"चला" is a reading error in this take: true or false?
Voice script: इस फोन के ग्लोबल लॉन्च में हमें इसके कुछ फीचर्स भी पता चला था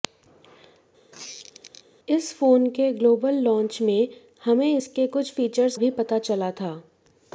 false